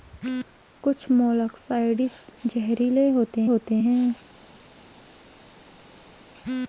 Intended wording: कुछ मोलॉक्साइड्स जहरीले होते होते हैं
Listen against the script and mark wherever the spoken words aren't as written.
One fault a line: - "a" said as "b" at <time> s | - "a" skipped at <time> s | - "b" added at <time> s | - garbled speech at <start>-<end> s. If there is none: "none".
none